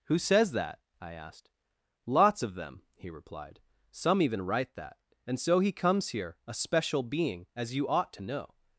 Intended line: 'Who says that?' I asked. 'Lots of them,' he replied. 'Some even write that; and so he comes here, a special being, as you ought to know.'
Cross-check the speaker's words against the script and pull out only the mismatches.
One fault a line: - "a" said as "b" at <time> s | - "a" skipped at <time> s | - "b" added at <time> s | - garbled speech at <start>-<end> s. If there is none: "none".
none